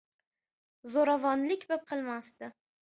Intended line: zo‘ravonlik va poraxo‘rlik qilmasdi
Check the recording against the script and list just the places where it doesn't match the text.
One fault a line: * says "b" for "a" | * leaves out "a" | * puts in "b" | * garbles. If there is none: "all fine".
* leaves out "poraxo‘rlik"